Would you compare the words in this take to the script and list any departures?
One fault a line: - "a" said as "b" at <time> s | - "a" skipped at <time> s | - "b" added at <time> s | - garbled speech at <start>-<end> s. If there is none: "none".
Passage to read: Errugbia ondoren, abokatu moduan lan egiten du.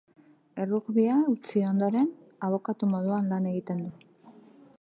- "utzi" added at 1.3 s